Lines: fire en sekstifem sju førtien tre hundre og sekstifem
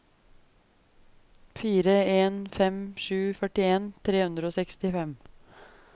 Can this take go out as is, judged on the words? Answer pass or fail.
fail